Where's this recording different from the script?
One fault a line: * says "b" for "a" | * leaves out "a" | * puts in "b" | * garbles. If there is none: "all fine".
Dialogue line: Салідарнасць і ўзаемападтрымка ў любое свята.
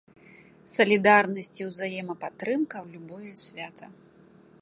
all fine